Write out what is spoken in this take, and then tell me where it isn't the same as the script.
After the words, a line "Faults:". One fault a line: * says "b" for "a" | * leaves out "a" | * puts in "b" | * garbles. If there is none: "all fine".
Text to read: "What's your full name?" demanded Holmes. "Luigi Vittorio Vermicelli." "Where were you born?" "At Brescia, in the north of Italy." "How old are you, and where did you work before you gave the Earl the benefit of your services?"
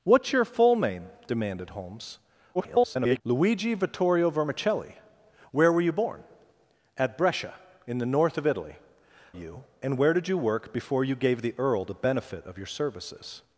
"What's your full name?" demanded Holmes. [garbled] "Luigi Vittorio Vermicelli." "Where were you born?" "At Brescia, in the north of Italy." "You, and where did you work before you gave the Earl the benefit of your services?"
Faults:
* garbles
* leaves out "How old are"